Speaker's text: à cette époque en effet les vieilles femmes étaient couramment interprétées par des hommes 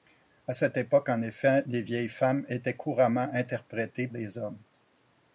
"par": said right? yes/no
no